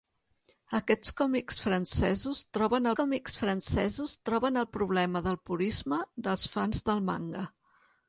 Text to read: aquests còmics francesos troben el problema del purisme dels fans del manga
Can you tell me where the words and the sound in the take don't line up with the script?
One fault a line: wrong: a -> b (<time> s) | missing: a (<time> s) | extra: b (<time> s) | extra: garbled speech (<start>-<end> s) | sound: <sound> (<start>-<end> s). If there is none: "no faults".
extra: còmics francesos troben (3.0 s)